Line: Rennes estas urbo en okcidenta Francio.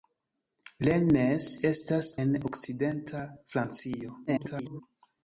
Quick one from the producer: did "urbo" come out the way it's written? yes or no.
no